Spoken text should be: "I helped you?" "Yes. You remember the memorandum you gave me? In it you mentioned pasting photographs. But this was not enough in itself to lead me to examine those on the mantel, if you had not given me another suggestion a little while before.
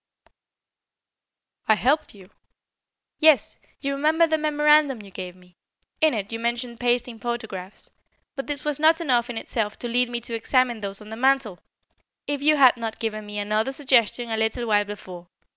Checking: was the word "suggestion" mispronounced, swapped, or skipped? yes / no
no